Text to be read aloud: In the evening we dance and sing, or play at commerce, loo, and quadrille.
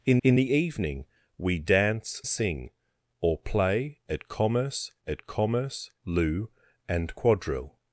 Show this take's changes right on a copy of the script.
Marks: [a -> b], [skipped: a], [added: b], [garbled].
In [added: in] the evening we dance [skipped: and] sing, or play at commerce, [added: at commerce] loo, and quadrille.